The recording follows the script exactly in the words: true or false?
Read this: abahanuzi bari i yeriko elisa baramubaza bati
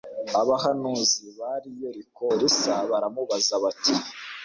true